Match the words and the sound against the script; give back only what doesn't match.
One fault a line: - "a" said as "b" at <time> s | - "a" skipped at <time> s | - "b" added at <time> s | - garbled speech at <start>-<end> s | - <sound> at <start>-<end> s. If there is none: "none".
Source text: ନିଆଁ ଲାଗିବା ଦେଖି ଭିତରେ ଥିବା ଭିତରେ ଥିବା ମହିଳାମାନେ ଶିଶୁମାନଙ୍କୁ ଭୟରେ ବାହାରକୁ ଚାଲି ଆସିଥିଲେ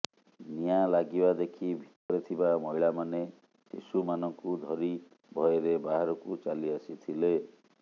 - dropout at 2.0-2.1 s
- "ଭିତରେ ଥିବା" skipped at 2.5 s
- "ଧରି" added at 4.6 s